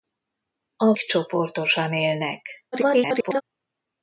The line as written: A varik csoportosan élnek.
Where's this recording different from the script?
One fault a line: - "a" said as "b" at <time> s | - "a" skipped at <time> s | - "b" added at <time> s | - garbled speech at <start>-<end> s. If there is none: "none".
- "varik" skipped at 0.9 s
- garbled speech at 2.7-3.4 s